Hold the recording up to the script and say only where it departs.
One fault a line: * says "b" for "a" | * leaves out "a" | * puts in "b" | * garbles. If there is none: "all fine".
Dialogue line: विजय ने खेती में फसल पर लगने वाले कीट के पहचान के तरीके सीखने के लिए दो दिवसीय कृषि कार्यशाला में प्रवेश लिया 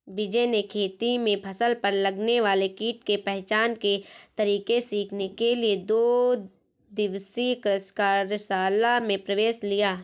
all fine